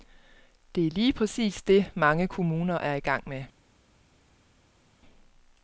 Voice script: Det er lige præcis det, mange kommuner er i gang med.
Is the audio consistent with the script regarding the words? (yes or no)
yes